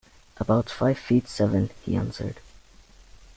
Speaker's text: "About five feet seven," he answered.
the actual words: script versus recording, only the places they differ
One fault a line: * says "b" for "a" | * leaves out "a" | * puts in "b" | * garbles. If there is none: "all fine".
all fine